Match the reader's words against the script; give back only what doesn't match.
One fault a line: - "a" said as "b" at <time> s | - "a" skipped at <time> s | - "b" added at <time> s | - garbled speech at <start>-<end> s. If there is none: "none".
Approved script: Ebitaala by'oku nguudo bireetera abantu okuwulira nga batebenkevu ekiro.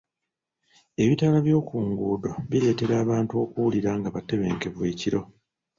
none